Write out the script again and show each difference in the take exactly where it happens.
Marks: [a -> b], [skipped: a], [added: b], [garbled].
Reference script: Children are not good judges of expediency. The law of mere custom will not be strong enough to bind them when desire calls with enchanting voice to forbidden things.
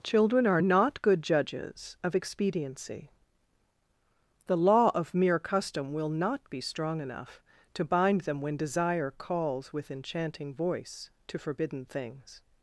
Children are not good judges of expediency. The law of mere custom will not be strong enough to bind them when desire calls with enchanting voice to forbidden things.